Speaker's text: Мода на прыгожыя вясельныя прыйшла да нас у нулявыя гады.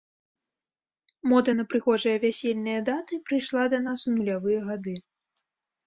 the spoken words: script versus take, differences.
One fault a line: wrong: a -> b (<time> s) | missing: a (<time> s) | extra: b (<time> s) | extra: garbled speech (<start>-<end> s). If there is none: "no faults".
extra: даты (2.9 s)